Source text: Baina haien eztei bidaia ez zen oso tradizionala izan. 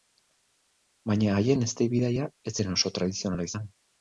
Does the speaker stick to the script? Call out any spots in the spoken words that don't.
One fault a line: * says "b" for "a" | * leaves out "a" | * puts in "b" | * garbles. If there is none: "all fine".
all fine